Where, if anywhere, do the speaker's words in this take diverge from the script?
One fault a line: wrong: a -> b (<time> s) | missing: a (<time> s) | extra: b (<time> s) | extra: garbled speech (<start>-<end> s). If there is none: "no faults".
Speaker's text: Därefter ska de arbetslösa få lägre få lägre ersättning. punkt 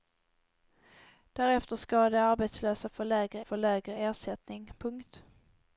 no faults